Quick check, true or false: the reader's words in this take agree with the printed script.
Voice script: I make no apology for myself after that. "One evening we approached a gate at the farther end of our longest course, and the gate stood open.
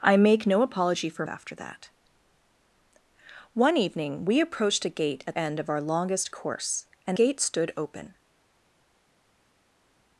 false